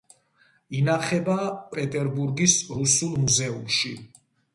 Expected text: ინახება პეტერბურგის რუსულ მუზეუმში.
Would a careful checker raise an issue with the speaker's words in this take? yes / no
no